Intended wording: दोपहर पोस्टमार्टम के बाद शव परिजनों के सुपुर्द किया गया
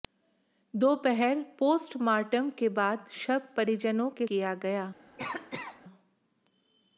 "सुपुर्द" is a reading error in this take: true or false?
true